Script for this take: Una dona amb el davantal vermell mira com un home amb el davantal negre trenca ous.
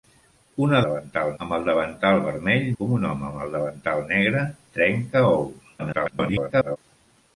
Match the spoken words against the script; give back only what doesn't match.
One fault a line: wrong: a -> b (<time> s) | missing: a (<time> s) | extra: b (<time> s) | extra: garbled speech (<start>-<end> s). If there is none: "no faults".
wrong: dona -> davantal (0.9 s)
missing: mira (2.7 s)
extra: garbled speech (5.8-6.8 s)